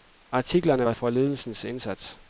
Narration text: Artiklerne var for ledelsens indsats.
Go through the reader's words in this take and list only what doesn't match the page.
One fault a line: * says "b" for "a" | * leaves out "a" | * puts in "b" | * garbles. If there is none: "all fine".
all fine